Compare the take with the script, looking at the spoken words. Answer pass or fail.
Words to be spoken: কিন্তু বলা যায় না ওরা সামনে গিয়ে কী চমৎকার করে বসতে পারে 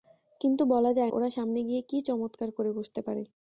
fail